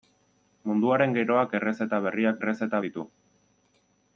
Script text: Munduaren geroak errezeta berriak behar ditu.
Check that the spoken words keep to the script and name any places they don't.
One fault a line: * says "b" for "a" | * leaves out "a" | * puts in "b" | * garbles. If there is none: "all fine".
* says "errezeta" for "behar"